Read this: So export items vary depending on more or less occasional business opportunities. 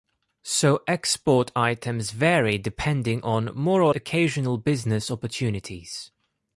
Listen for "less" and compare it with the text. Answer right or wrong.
wrong